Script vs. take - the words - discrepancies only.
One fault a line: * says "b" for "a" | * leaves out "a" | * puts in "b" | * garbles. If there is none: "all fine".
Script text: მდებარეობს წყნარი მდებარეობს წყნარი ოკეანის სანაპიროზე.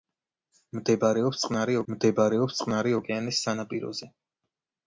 all fine